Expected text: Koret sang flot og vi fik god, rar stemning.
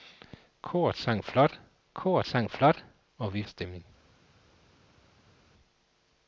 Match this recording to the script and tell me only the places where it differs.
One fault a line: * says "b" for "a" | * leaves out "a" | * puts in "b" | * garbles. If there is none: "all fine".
* says "koret sang flot og vi" for "og vi fik god rar"